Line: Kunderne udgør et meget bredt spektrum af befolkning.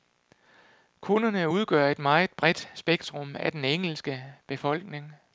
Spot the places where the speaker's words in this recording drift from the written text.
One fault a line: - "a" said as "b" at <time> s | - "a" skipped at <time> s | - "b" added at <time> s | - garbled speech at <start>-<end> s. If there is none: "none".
- "den engelske" added at 3.5 s